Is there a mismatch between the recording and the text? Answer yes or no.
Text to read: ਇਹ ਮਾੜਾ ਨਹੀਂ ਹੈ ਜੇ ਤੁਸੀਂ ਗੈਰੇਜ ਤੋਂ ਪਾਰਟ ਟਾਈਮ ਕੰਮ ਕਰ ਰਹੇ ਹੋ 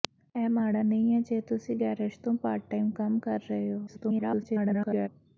yes